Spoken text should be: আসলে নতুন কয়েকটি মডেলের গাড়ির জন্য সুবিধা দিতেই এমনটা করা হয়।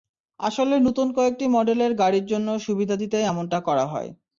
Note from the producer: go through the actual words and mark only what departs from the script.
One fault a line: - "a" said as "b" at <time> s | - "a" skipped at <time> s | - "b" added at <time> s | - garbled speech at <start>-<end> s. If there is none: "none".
none